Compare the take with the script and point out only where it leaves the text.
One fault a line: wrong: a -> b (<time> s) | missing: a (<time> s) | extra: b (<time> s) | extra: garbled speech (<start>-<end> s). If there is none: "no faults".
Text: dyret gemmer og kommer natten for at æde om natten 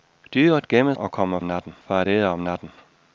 no faults